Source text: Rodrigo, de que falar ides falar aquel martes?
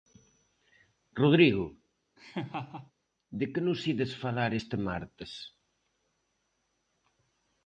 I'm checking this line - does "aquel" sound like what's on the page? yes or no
no